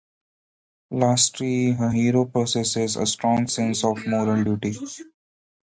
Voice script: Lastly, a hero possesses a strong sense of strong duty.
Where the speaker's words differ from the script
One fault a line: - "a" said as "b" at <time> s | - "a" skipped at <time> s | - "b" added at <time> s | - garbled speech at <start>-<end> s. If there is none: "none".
- "strong" said as "moral" at 4.1 s